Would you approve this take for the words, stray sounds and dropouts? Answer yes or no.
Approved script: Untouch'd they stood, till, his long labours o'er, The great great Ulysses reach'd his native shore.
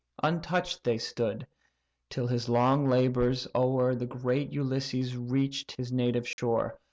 no